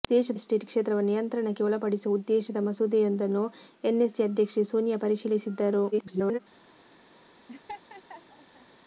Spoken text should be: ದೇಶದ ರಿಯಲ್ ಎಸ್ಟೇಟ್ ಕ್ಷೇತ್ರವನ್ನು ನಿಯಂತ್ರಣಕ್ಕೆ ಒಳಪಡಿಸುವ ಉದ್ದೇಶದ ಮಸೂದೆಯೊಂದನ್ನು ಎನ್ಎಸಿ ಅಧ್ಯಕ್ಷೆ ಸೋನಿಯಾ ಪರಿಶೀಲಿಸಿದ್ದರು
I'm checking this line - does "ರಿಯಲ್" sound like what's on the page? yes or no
no